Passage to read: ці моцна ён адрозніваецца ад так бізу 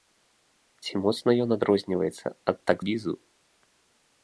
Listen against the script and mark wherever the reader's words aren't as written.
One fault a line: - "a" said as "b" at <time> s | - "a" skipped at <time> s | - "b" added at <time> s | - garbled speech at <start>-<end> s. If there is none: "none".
none